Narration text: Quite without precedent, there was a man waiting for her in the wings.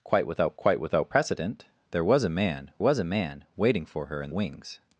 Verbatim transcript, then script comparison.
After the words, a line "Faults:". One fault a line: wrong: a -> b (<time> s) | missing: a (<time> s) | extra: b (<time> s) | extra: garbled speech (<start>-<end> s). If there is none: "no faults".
Quite without quite without precedent, there was a man was a man waiting for her in wings.
Faults:
extra: quite without (0.6 s)
extra: was a man (2.8 s)
missing: the (4.3 s)